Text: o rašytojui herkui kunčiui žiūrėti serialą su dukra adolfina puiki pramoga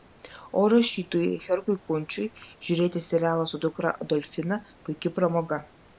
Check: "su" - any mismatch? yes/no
no